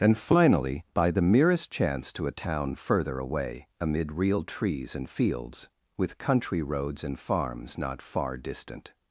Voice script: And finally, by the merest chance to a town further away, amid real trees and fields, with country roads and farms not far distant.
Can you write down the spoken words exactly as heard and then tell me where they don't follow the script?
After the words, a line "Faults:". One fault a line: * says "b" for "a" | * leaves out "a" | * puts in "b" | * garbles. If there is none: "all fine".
And finally, by the merest chance to a town further away, amid real trees and fields, with country roads and farms not far distant.
Faults:
all fine